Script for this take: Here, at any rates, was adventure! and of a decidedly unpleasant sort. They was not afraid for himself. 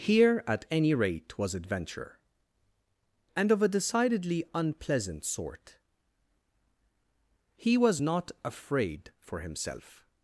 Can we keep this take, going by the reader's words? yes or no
no